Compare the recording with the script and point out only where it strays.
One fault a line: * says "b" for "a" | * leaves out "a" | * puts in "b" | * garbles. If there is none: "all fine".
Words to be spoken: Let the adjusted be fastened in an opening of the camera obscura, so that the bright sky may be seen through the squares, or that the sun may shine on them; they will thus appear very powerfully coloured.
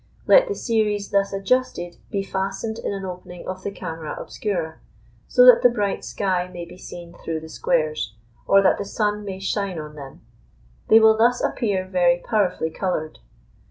* puts in "series thus"